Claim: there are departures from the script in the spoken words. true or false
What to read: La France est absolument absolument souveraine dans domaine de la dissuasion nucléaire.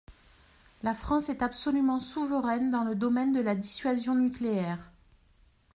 true